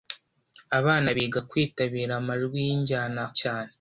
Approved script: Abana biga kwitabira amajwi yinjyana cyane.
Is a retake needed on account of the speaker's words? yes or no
no